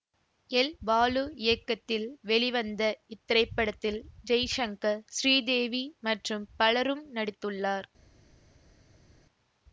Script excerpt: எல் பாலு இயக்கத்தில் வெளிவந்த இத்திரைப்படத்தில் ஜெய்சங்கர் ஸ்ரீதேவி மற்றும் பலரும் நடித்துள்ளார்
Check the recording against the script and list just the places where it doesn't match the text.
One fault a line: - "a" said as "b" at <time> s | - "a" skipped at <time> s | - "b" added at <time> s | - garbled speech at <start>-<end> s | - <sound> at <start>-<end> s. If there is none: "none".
none